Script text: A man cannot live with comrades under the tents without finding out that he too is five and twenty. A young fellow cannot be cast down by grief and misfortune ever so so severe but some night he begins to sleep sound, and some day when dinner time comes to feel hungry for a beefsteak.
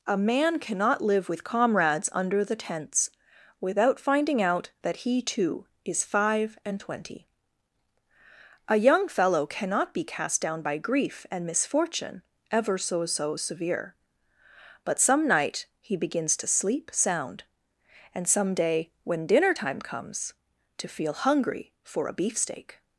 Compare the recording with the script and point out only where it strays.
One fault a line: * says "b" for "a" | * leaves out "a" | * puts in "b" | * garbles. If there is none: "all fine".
all fine